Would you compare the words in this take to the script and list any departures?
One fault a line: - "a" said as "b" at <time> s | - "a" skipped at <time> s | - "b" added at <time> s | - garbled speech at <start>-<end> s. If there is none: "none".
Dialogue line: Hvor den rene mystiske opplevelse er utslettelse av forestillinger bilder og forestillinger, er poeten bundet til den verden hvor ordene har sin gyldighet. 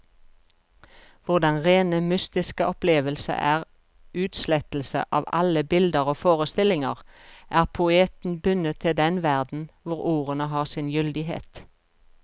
- "forestillinger" said as "alle" at 5.4 s